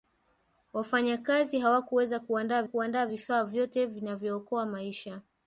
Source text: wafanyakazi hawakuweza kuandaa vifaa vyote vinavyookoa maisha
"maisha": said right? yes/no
yes